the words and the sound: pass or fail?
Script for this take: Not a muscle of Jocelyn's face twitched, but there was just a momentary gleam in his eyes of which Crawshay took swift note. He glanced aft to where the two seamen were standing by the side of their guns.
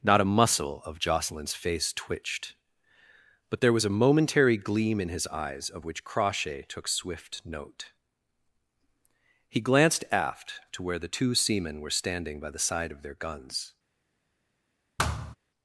fail